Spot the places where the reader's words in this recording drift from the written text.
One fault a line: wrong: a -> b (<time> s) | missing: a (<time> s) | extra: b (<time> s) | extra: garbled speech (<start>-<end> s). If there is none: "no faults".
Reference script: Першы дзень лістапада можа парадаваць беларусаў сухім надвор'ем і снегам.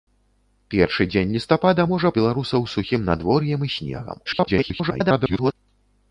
missing: парадаваць (2.1 s)
extra: garbled speech (4.3-5.5 s)